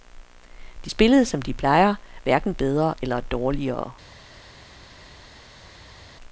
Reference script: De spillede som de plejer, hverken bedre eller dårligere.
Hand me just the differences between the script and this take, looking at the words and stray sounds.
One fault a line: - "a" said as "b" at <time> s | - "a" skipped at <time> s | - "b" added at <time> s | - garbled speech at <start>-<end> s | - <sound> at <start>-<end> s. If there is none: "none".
none